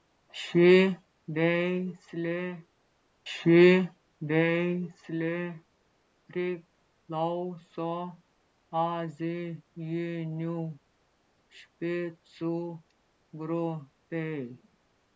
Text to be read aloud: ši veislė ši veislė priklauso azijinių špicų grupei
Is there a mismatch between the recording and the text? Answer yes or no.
no